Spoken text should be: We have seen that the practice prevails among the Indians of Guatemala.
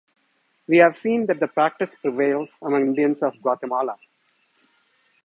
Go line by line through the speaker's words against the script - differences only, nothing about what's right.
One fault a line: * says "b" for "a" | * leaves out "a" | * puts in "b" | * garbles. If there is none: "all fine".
* leaves out "the"